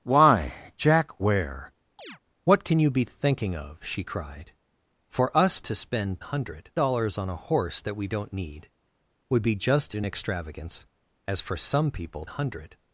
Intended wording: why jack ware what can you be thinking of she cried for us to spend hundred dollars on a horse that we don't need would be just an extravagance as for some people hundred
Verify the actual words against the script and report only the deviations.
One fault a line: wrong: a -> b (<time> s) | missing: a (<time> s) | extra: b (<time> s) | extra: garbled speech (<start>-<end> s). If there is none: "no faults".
no faults